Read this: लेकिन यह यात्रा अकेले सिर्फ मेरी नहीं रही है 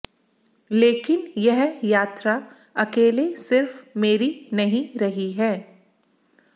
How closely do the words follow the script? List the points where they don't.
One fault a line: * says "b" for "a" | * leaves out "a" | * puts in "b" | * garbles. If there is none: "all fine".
all fine